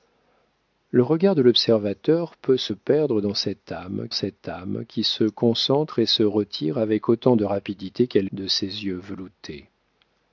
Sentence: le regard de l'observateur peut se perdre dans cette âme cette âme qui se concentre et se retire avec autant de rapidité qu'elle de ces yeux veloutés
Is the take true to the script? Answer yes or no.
yes